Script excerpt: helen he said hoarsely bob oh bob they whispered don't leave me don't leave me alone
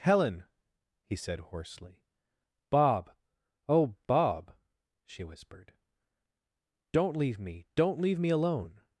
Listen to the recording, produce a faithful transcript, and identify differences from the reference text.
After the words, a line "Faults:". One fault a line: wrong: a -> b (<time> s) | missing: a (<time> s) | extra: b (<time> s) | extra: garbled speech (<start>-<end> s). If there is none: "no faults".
helen he said hoarsely bob oh bob she whispered don't leave me don't leave me alone
Faults:
wrong: they -> she (5.0 s)